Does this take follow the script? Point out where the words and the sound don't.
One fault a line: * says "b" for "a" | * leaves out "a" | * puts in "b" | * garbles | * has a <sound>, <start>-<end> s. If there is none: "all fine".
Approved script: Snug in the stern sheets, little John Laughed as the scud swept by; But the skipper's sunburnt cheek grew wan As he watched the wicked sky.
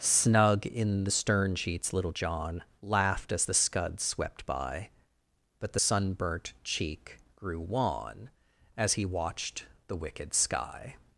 * leaves out "skipper's"